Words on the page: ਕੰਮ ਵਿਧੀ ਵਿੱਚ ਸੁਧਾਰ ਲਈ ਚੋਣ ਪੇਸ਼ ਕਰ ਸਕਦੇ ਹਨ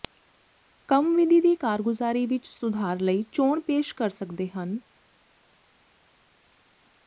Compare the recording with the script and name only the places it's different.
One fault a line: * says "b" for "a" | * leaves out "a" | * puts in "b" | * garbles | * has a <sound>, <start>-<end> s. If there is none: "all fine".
* puts in "ਦੀ ਕਾਰਗੁਜ਼ਾਰੀ"